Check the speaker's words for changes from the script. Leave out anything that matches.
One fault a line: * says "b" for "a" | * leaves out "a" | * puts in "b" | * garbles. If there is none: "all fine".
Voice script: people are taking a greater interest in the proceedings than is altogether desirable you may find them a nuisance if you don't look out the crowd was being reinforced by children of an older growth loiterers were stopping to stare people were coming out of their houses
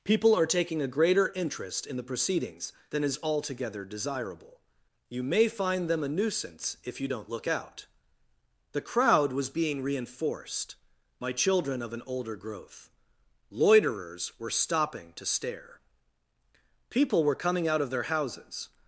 * says "my" for "by"